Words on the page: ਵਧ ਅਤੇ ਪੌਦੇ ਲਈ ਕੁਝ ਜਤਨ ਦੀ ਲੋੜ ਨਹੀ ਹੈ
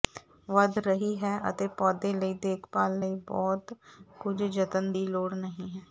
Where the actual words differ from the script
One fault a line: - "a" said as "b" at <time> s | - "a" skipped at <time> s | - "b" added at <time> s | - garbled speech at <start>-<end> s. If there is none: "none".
- "ਰਹੀ ਹੈ" added at 0.8 s
- "ਦੇਖਭਾਲ ਲਈ ਬਹੁਤ" added at 2.4 s